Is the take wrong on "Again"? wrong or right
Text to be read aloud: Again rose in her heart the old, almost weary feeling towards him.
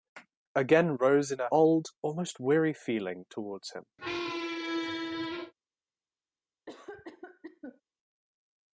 right